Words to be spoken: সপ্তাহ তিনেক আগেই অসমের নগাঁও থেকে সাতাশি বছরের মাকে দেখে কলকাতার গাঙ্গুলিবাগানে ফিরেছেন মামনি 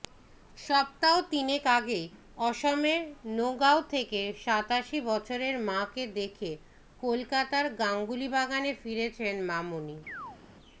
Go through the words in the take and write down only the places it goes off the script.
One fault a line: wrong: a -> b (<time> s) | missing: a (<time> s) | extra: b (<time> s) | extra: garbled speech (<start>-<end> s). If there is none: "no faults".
no faults